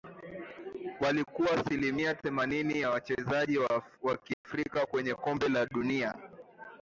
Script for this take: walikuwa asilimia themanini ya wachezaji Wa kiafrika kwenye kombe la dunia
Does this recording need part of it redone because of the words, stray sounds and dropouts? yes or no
yes